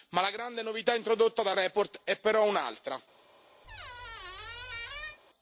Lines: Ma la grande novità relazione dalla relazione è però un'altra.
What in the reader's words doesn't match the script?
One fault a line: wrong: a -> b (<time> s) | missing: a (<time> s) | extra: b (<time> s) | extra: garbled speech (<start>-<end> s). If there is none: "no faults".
wrong: relazione -> introdotta (0.9 s)